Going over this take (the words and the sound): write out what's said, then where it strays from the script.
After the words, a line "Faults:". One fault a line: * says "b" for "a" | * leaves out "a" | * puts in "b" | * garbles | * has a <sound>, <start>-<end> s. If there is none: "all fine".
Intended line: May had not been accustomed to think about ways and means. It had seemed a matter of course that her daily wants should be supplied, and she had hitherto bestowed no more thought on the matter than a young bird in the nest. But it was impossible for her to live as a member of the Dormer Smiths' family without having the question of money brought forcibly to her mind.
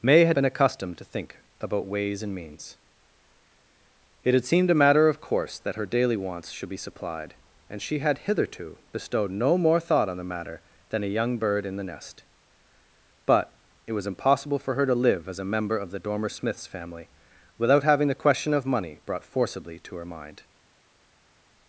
May had been accustomed to think about ways and means. It had seemed a matter of course that her daily wants should be supplied, and she had hitherto bestowed no more thought on the matter than a young bird in the nest. But it was impossible for her to live as a member of the Dormer Smiths' family without having the question of money brought forcibly to her mind.
Faults:
* leaves out "not"